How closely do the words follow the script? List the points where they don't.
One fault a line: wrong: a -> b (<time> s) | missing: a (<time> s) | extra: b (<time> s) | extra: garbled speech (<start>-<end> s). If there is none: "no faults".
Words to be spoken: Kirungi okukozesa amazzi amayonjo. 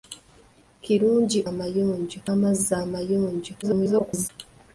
wrong: okukozesa -> amayonjo (1.5 s)
extra: garbled speech (3.6-4.3 s)